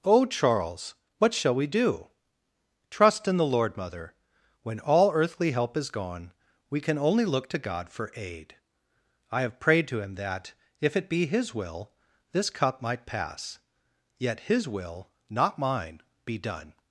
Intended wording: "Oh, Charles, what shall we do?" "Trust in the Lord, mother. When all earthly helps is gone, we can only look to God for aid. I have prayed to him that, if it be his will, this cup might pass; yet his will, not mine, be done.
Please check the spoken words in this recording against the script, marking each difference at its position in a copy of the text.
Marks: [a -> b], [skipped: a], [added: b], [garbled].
"Oh, Charles, what shall we do?" "Trust in the Lord, mother. When all earthly [helps -> help] is gone, we can only look to God for aid. I have prayed to him that, if it be his will, this cup might pass; yet his will, not mine, be done.